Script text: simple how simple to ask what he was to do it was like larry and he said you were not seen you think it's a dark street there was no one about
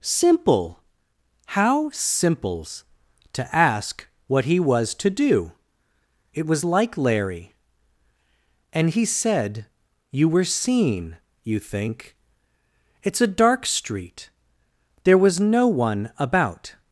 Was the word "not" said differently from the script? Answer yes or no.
yes